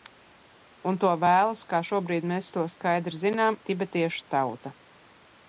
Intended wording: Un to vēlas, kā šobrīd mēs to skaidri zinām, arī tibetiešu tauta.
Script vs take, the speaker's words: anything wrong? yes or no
yes